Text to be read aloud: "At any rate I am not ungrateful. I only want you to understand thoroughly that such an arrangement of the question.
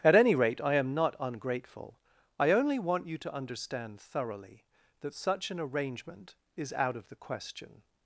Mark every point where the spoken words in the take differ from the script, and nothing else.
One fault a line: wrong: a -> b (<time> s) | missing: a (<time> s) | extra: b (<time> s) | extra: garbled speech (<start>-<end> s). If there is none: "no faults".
extra: is out (6.5 s)